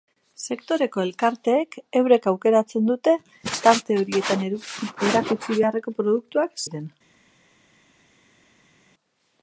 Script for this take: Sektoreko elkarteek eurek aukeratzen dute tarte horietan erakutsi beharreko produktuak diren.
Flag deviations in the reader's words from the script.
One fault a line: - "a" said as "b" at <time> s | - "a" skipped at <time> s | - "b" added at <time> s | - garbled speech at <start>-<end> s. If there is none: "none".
none